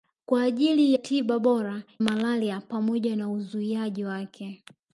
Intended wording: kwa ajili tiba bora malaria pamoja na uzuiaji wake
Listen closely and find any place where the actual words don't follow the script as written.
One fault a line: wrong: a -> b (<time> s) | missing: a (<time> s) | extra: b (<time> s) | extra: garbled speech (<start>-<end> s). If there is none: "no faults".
no faults